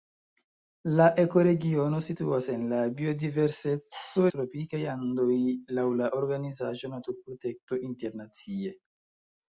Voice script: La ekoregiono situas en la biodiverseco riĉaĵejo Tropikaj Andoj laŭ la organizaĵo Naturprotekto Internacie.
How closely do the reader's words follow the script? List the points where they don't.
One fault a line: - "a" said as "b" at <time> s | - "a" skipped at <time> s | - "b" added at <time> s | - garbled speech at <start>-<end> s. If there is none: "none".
- "riĉaĵejo" skipped at 4.2 s